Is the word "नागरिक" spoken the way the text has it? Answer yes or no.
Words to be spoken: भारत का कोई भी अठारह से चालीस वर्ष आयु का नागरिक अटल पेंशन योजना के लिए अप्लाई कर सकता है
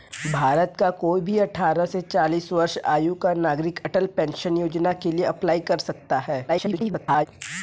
yes